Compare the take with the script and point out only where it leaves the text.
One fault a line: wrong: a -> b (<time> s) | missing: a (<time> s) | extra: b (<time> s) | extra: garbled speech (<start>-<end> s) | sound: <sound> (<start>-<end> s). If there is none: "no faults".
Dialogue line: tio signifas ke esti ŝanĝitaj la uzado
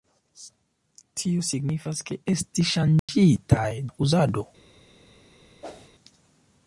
sound: dropout (3.0-3.1 s)
sound: whoosh (5.6-5.9 s)